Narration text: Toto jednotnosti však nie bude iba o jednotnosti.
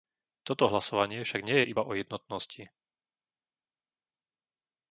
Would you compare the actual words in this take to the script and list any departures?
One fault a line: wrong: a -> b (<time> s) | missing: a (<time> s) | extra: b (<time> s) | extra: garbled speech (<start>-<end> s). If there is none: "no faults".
wrong: jednotnosti -> hlasovanie (0.7 s)
wrong: bude -> je (1.6 s)